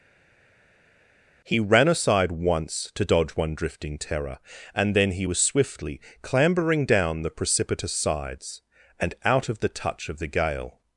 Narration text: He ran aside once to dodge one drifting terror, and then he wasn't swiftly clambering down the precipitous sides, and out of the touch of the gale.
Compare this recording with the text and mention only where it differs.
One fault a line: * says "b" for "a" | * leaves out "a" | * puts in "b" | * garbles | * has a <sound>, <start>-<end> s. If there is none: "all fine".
* says "was" for "wasn't"